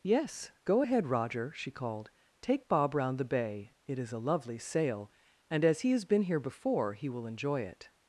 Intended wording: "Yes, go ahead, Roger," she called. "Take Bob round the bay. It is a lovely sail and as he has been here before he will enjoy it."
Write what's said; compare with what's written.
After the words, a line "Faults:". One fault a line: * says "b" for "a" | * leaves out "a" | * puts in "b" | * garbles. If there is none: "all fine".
"Yes, go ahead, Roger," she called. "Take Bob round the bay. It is a lovely sail and as he has been here before he will enjoy it."
Faults:
all fine